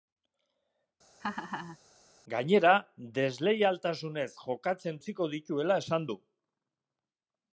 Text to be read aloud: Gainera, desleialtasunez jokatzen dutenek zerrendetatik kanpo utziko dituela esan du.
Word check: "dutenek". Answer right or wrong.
wrong